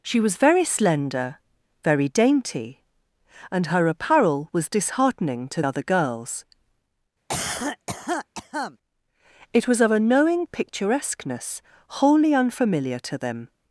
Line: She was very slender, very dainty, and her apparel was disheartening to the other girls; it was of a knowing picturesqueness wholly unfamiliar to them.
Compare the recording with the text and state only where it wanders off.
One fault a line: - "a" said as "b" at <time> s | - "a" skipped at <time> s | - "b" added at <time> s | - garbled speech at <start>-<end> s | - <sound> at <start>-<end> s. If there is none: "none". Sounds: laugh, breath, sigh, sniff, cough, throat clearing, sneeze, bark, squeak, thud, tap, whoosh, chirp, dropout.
- "the" skipped at 5.6 s
- cough at 7.3-8.8 s